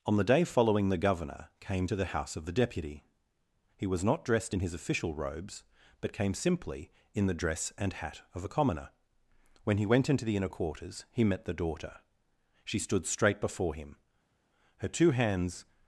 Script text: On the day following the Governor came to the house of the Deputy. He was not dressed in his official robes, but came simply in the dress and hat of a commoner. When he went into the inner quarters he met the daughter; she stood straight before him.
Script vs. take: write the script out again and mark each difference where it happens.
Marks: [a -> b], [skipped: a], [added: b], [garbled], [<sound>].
On the day following the Governor came to the house of the Deputy. He was not dressed in his official robes, but came simply in the dress and hat of a commoner. When he went into the inner quarters he met the daughter; she stood straight before him. [added: Her two hands]